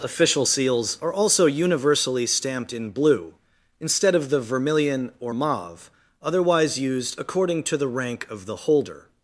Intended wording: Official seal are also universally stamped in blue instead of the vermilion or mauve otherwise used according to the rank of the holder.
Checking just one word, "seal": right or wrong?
wrong